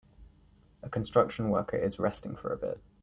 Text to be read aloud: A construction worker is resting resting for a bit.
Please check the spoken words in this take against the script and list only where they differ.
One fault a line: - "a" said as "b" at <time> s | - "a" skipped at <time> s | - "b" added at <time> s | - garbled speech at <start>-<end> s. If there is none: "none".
- "resting" skipped at 2.4 s